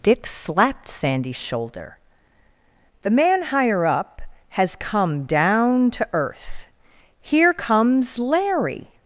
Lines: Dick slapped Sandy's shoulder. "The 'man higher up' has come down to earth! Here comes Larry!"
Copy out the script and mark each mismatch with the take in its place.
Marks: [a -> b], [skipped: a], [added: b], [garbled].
Dick slapped Sandy's shoulder. "The 'man higher up' has come down to earth! Here comes Larry!"